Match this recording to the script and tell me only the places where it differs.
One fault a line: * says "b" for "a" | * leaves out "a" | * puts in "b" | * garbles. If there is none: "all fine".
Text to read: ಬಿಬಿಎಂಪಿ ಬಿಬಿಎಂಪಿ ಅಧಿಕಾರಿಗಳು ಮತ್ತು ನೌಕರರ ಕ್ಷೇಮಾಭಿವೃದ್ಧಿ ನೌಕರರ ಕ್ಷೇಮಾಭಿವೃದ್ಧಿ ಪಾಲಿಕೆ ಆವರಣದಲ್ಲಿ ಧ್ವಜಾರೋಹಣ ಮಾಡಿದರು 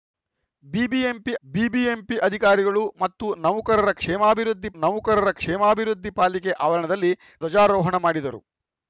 all fine